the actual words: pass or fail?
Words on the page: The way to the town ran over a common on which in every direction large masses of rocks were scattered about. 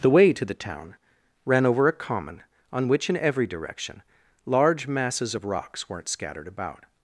fail